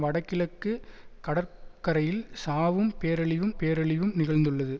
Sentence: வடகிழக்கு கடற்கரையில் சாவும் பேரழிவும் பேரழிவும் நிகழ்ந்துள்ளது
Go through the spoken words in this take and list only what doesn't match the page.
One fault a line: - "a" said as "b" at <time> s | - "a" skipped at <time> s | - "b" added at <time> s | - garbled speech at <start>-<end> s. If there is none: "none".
none